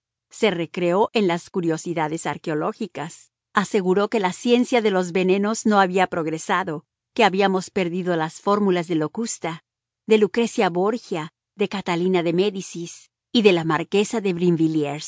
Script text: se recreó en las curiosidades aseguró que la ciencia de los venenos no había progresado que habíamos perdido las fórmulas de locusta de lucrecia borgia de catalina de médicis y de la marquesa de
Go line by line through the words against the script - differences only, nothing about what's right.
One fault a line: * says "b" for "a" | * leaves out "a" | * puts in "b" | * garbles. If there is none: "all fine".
* puts in "arqueológicas"